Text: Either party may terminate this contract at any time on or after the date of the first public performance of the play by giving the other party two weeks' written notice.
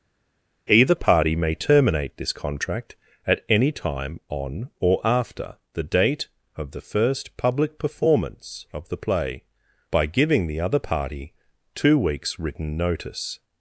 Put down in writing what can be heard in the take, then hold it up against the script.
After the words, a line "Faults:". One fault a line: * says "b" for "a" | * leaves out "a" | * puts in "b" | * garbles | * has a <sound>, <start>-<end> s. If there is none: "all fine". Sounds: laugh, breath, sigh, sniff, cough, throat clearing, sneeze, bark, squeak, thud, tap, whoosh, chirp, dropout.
Either party may terminate this contract at any time on or after the date of the first public performance of the play by giving the other party two weeks' written notice.
Faults:
all fine